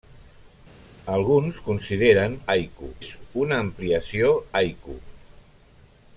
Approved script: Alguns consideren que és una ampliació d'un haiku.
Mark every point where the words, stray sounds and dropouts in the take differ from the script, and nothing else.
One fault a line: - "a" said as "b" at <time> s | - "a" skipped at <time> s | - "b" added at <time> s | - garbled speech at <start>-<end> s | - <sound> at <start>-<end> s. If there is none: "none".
- "que" said as "haiku" at 2.6 s
- "d'un" skipped at 4.3 s